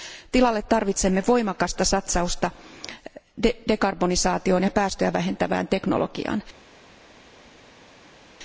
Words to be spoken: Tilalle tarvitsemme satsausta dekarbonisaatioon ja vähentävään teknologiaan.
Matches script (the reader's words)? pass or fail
fail